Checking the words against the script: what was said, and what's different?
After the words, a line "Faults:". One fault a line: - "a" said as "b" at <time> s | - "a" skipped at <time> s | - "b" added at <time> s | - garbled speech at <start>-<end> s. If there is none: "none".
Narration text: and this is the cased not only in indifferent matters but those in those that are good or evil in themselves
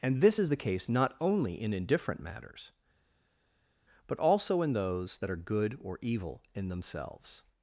and this is the case not only in indifferent matters but also in those that are good or evil in themselves
Faults:
- "cased" said as "case" at 0.6 s
- "those" said as "also" at 4.2 s